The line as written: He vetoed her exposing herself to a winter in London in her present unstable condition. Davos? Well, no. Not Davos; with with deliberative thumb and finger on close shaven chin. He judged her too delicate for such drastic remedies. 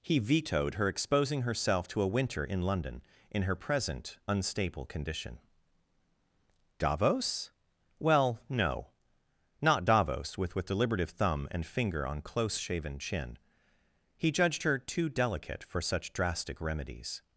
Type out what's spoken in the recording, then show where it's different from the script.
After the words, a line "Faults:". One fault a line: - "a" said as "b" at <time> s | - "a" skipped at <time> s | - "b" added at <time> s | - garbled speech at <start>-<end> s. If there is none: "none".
He vetoed her exposing herself to a winter in London in her present unstable condition. Davos? Well, no. Not Davos; with with deliberative thumb and finger on close shaven chin. He judged her too delicate for such drastic remedies.
Faults:
none